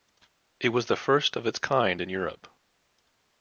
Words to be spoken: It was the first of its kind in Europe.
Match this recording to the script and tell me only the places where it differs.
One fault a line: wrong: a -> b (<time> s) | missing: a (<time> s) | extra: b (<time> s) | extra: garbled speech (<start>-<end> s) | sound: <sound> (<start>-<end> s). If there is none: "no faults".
no faults